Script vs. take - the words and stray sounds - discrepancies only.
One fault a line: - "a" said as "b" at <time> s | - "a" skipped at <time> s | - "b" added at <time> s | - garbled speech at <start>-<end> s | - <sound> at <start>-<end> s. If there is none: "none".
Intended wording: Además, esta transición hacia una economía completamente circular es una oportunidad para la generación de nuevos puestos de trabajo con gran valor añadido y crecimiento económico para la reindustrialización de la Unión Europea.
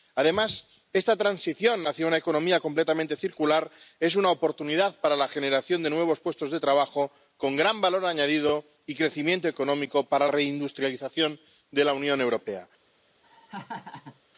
- "la" skipped at 10.3 s
- laugh at 13.2-14.2 s